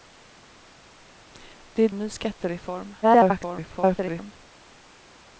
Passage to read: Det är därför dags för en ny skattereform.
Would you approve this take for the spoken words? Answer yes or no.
no